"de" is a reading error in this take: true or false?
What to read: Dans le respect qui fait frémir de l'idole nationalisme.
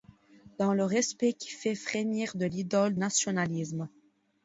false